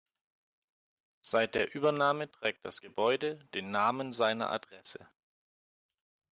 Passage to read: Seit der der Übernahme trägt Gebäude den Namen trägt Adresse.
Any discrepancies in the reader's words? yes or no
yes